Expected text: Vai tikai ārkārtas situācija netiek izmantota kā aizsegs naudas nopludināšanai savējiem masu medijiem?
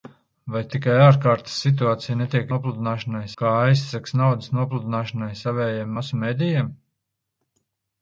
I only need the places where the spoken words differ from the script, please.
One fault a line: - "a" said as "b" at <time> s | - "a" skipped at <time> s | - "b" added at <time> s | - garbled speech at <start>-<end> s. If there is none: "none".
- "izmantota" said as "nopludināšanai" at 2.5 s